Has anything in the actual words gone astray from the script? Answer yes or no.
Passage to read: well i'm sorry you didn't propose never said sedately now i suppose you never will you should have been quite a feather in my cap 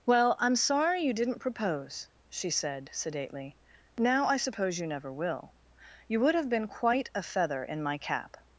yes